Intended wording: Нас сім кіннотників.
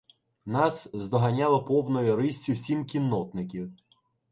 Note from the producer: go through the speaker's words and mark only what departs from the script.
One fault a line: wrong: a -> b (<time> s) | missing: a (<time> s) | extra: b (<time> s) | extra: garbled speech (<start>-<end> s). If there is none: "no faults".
extra: здоганяло повною риссю (0.9 s)